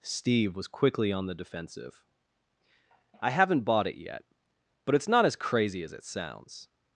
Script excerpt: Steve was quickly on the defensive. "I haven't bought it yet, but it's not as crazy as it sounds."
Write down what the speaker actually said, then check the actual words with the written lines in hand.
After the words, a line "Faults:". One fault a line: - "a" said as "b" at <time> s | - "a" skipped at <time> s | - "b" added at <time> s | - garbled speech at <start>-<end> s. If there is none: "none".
Steve was quickly on the defensive. "I haven't bought it yet, but it's not as crazy as it sounds."
Faults:
none